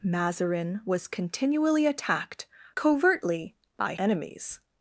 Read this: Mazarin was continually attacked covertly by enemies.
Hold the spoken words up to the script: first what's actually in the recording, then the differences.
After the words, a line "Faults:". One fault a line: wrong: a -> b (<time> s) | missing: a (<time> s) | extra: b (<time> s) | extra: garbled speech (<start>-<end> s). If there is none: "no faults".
Mazarin was continually attacked covertly by enemies.
Faults:
no faults